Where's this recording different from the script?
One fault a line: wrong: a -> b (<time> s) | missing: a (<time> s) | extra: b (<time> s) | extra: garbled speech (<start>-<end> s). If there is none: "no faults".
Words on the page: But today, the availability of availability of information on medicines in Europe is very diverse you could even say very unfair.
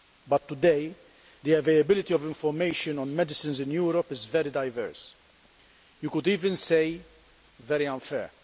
missing: availability of (2.2 s)